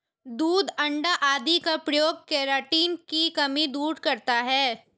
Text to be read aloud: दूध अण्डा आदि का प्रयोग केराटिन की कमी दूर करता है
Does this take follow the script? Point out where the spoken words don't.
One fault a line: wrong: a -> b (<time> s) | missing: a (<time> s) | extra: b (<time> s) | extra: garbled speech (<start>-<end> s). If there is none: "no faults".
no faults